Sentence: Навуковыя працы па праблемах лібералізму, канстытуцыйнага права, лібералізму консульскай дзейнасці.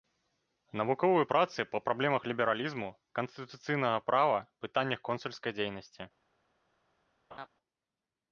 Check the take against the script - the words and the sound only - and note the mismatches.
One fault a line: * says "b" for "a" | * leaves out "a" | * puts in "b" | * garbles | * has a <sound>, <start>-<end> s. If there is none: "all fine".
* says "пытаннях" for "лібералізму"
* has a laugh, 7.3-7.5 s